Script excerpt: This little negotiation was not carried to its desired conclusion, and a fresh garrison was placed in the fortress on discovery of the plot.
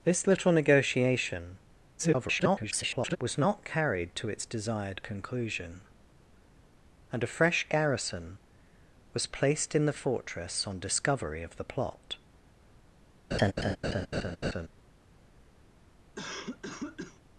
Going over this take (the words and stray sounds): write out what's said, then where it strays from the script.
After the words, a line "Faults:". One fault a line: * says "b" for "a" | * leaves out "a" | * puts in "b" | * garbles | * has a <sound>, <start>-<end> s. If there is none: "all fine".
This little negotiation [garbled] was not carried to its desired conclusion, and a fresh garrison was placed in the fortress on discovery of the plot.
Faults:
* garbles
* has a laugh, 13.3-14.7 s
* has a cough, 16.2-17.2 s